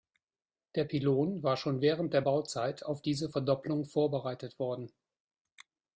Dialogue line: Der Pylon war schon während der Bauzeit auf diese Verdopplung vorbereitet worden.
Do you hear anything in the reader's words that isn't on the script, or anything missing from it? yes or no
no